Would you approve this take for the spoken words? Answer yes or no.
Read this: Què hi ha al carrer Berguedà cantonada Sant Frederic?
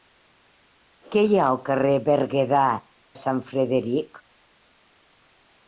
no